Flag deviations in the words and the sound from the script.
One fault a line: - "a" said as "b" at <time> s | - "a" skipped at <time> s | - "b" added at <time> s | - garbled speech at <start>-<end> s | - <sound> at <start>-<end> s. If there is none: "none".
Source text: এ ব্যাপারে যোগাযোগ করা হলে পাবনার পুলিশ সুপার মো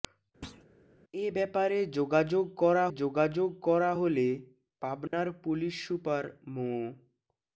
- thud at 0.4-0.7 s
- "যোগাযোগ করা" added at 2.9 s
- dropout at 5.1-5.1 s